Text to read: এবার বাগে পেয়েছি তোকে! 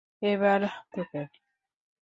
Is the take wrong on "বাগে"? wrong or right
wrong